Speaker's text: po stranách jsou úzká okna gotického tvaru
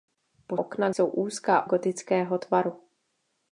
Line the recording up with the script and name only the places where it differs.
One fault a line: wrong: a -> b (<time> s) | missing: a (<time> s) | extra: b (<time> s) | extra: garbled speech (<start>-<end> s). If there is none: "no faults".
wrong: stranách -> okna (0.6 s)
missing: okna (1.7 s)